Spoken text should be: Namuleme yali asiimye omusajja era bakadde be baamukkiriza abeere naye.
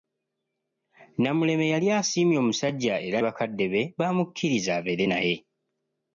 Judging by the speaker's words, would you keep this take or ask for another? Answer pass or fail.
pass